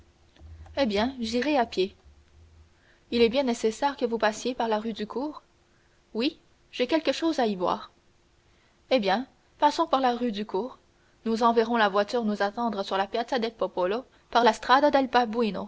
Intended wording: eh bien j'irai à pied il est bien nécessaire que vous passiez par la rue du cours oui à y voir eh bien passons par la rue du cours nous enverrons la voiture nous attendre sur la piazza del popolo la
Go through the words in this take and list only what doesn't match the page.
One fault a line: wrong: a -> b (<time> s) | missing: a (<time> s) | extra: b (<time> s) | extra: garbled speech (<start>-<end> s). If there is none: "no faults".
extra: j'ai quelque chose (6.7 s)
extra: par (14.3 s)